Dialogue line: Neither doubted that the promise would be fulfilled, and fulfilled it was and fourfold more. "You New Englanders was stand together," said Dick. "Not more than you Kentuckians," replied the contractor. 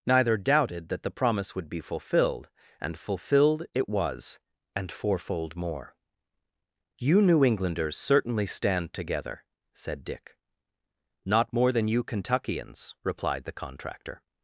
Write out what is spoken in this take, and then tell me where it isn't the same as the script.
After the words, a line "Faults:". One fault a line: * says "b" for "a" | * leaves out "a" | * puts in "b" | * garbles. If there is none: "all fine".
Neither doubted that the promise would be fulfilled, and fulfilled it was and fourfold more. "You New Englanders certainly stand together," said Dick. "Not more than you Kentuckians," replied the contractor.
Faults:
* says "certainly" for "was"